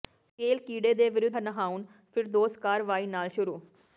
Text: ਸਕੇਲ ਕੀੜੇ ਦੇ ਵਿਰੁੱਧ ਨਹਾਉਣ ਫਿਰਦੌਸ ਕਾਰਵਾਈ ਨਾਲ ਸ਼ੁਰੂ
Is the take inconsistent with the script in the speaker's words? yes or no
no